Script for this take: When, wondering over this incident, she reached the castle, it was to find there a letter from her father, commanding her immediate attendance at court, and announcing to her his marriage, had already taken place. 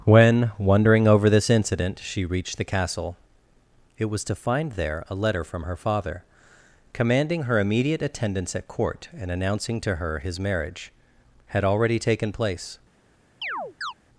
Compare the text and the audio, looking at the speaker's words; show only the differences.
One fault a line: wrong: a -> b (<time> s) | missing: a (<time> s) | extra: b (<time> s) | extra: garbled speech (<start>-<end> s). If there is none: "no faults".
no faults